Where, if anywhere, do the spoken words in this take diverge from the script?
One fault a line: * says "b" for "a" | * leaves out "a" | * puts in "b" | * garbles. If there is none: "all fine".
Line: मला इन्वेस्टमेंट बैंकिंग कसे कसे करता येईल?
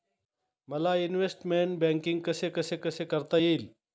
* puts in "कसे"